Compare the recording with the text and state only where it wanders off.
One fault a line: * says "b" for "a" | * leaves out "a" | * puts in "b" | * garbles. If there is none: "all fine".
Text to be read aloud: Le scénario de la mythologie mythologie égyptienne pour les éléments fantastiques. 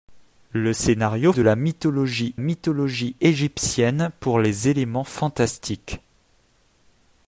all fine